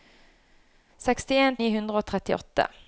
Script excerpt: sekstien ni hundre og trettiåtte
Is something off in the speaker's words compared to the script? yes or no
no